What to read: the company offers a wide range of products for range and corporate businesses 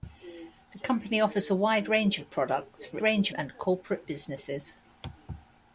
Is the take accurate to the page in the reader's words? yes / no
yes